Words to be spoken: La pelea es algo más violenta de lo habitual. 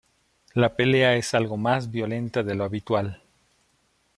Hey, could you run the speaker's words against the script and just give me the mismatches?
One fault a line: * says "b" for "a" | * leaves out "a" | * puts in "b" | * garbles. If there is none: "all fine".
all fine